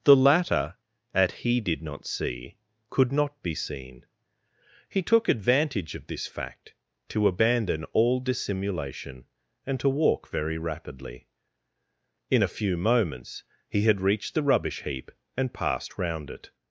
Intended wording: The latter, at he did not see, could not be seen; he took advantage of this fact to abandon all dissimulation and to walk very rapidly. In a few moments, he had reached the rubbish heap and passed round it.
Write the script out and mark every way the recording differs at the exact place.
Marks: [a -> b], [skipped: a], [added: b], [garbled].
The latter, at he did not see, could not be seen; he took advantage of this fact to abandon all dissimulation and to walk very rapidly. In a few moments, he had reached the rubbish heap and passed round it.